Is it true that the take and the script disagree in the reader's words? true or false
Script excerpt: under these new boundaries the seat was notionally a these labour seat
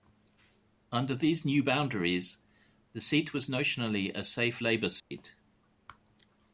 true